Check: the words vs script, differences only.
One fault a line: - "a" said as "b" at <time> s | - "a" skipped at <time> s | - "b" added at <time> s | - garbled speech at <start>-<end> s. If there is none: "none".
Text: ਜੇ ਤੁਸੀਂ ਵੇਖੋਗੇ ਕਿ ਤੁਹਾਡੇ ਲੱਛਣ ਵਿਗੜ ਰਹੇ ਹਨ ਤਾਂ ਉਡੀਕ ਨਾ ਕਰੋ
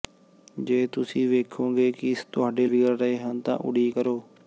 - "ਲੱਛਣ" skipped at 2.6 s
- "ਨਾ" skipped at 4.0 s